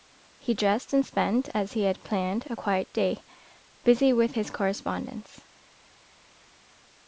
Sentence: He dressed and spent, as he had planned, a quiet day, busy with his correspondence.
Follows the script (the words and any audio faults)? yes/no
yes